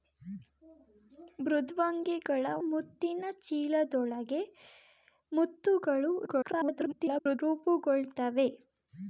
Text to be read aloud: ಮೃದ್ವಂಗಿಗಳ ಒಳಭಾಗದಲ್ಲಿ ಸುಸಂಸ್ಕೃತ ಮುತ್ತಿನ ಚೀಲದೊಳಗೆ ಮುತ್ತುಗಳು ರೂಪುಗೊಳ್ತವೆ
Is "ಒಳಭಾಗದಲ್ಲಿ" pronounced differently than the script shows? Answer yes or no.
yes